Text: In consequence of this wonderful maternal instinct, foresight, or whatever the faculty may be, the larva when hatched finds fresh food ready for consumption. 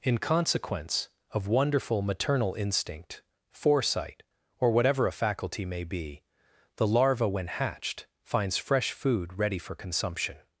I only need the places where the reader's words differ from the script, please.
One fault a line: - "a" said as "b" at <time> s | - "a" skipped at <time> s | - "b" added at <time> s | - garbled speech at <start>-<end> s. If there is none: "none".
- "this" skipped at 1.5 s
- "the" said as "a" at 5.0 s